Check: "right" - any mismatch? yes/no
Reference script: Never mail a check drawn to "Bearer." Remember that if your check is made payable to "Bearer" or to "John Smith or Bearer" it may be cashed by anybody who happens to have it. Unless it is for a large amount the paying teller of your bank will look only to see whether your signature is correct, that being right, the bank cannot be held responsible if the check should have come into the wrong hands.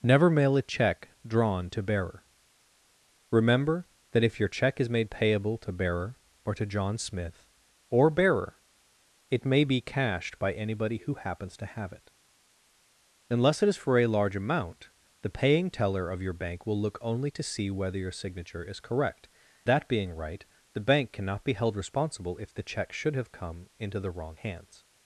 no